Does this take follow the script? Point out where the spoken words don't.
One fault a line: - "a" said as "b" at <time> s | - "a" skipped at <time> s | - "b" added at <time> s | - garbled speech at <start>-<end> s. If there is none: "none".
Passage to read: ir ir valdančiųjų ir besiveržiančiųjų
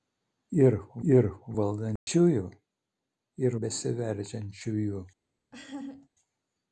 none